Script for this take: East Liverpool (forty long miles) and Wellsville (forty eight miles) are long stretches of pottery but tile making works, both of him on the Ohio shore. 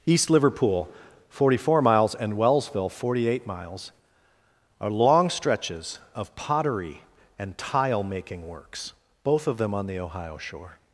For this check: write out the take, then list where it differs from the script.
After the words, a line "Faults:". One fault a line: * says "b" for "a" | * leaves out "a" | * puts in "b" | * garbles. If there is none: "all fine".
East Liverpool (forty four miles) and Wellsville (forty eight miles) are long stretches of pottery and tile making works, both of them on the Ohio shore.
Faults:
* says "four" for "long"
* says "and" for "but"
* says "them" for "him"